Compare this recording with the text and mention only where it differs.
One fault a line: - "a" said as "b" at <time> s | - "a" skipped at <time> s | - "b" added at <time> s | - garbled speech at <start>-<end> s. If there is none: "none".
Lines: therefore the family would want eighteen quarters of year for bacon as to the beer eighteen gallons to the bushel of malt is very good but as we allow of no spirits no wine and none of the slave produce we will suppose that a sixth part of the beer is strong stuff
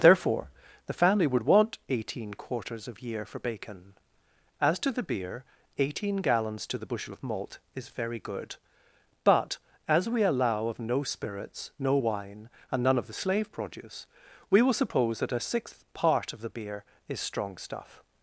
none